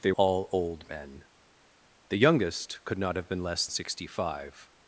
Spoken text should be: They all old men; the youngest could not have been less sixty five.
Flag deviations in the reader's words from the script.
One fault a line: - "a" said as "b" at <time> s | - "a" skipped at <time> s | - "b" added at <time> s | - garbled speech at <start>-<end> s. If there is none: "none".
none